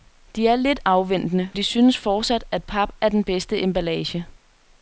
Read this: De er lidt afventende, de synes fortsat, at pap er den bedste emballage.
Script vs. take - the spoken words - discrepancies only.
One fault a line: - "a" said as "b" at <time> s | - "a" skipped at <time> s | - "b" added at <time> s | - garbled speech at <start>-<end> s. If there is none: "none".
none